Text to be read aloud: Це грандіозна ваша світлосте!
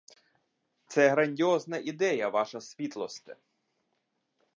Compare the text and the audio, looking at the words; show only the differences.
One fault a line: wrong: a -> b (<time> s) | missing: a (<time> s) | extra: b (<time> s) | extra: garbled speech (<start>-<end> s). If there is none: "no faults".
extra: ідея (1.8 s)